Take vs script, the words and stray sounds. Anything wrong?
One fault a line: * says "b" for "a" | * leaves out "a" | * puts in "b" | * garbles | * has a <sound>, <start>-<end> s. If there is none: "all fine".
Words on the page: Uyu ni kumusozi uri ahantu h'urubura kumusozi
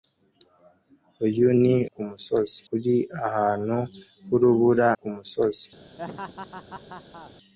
* has a laugh, 6.0-7.3 s